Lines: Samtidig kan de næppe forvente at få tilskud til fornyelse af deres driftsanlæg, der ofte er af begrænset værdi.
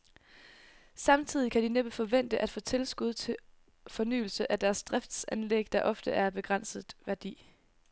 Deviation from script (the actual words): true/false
false